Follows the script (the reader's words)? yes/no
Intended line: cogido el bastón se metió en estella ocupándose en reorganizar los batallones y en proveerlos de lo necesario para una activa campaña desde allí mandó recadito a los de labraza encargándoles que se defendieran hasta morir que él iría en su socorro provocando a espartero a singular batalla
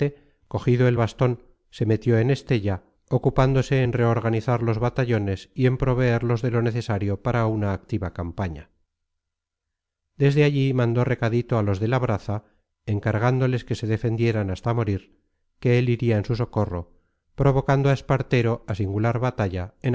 yes